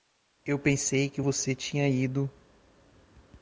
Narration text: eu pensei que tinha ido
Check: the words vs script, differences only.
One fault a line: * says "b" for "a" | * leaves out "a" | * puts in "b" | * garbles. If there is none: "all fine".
* puts in "você"